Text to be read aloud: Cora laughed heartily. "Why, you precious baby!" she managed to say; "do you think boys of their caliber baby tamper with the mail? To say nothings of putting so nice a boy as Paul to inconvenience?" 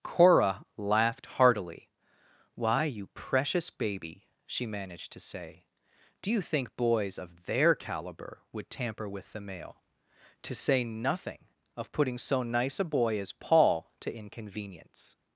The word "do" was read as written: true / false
true